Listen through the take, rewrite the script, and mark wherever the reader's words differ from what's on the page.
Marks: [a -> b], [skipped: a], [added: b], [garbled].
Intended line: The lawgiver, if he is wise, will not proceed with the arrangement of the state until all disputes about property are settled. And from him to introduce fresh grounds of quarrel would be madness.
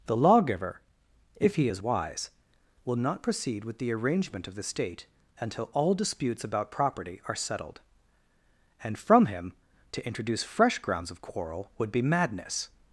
The lawgiver, if he is wise, will not proceed with the arrangement of the state until all disputes about property are settled. And from him to introduce fresh grounds of quarrel would be madness.